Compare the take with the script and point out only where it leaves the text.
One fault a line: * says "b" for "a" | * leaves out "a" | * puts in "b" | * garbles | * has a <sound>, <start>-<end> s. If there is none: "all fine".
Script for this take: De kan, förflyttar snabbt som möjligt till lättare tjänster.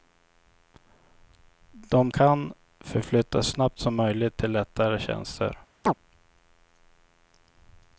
* has a chirp, 5.8-5.9 s